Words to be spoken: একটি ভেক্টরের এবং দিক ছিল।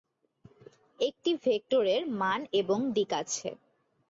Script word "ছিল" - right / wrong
wrong